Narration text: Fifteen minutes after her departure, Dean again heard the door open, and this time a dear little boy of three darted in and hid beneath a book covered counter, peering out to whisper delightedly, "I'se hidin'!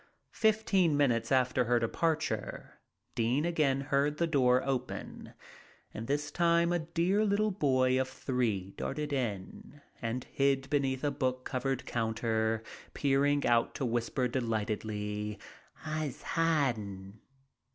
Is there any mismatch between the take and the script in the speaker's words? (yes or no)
no